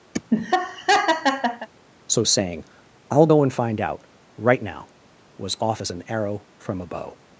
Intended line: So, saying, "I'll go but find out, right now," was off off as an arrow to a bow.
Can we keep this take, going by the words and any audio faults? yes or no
no